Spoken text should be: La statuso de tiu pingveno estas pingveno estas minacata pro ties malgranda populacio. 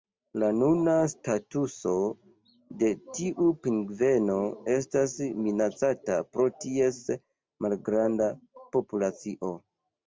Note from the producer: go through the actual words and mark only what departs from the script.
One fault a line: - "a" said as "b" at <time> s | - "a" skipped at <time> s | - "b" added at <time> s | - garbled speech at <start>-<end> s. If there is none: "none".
- "nuna" added at 0.6 s
- "pingveno estas" skipped at 5.2 s